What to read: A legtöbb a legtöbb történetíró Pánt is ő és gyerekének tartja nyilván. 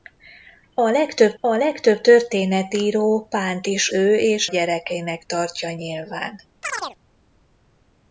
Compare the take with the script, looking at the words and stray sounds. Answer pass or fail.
fail